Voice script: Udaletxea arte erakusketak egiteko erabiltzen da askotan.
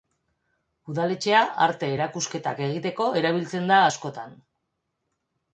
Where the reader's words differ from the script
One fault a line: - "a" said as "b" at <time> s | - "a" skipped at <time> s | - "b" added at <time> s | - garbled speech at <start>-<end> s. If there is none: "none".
none